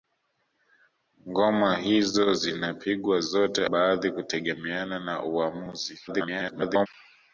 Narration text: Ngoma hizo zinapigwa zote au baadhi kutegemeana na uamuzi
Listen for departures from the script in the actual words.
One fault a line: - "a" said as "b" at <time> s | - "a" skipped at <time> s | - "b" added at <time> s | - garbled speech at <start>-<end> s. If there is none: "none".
- "au" skipped at 3.7 s
- garbled speech at 6.1-6.9 s